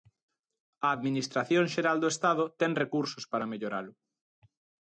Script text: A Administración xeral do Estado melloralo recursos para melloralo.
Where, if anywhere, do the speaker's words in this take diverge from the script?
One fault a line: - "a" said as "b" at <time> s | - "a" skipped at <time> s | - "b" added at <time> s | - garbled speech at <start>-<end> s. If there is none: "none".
- "melloralo" said as "ten" at 2.6 s